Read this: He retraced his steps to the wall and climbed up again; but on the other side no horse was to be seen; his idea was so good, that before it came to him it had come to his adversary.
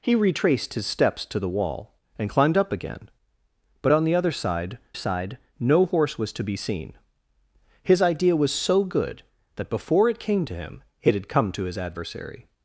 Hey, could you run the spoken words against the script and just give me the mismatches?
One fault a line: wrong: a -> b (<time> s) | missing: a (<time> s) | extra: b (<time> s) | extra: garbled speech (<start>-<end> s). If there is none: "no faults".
extra: side (4.9 s)